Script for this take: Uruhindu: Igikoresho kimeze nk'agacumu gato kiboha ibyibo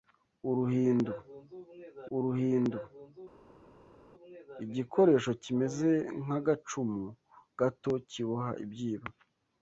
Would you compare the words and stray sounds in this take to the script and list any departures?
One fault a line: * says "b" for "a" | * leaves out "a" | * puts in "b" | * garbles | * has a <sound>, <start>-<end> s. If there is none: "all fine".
* puts in "uruhindu"